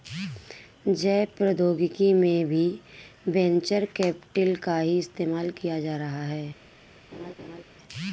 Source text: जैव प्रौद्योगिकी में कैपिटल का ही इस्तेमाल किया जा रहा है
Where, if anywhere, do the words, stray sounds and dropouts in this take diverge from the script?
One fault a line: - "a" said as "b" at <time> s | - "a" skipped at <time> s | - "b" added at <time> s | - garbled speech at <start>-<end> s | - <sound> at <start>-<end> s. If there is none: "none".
- "भी वेंचर" added at 2.5 s
- laugh at 7.1-7.6 s